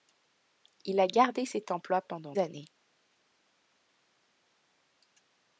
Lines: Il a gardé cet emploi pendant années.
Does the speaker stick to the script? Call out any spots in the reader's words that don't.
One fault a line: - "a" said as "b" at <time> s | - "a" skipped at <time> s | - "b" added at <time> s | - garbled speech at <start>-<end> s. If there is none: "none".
none